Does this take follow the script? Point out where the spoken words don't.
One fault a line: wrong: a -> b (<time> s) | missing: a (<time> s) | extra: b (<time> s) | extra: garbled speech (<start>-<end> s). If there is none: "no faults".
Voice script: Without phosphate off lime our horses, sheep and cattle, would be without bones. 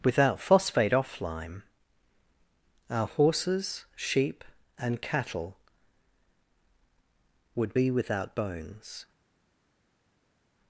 no faults